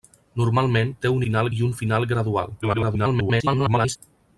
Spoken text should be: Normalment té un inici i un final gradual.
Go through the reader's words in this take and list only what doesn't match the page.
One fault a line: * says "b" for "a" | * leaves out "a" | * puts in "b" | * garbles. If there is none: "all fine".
* says "final" for "inici"
* garbles